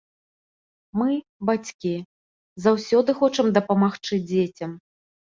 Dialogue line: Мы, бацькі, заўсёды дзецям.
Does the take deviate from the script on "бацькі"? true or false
false